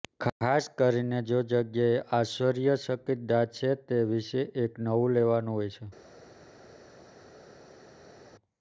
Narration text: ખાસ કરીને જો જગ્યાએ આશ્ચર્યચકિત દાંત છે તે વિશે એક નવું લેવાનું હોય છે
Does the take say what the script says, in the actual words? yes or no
yes